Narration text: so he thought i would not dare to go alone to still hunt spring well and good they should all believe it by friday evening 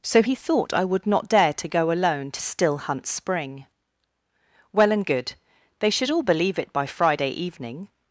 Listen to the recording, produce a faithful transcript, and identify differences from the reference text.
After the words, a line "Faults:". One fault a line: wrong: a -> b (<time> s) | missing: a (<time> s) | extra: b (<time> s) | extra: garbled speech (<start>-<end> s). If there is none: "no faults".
so he thought i would not dare to go alone to still hunt spring well and good they should all believe it by friday evening
Faults:
no faults